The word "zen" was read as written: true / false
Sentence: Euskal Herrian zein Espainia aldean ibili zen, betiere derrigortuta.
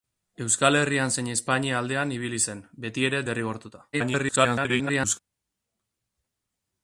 true